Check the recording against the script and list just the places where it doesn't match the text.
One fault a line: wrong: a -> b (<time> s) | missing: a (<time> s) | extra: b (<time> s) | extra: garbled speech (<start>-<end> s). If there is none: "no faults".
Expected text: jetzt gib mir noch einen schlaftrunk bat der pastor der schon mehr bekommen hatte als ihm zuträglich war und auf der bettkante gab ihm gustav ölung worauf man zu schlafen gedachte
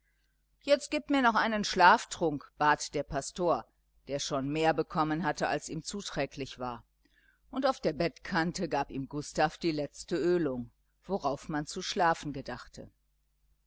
extra: die letzte (9.6 s)